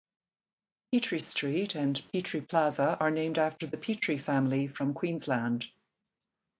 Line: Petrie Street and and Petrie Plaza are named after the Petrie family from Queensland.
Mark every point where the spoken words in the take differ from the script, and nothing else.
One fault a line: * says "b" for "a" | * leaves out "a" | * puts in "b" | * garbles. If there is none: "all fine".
* leaves out "and"